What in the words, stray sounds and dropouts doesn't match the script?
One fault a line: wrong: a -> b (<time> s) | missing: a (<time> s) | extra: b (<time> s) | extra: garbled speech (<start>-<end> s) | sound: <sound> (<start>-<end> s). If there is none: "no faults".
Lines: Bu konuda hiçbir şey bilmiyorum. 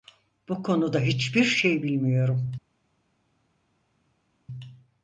no faults